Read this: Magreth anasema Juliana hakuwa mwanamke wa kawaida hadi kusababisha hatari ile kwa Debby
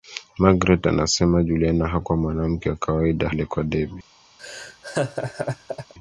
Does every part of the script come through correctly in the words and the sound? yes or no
no